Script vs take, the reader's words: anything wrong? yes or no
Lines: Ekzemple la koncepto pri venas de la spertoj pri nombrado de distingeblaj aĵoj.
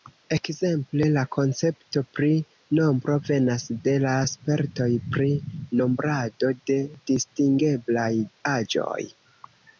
yes